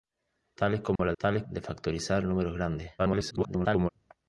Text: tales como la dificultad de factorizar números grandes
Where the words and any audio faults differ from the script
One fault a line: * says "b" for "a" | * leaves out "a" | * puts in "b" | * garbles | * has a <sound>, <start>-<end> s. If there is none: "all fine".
* has a dropout, 1.0-1.0 s
* says "tales" for "dificultad"
* garbles